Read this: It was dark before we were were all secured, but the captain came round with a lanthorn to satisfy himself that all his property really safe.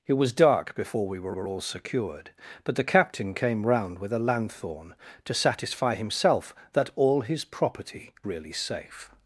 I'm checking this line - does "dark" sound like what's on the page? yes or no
yes